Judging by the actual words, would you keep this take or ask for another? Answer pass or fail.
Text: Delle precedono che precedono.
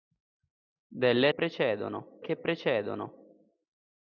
pass